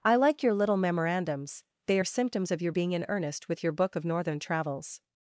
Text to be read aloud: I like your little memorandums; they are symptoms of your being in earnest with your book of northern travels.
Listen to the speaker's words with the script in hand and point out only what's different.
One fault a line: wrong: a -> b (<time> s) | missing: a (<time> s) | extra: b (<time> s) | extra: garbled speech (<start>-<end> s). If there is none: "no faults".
no faults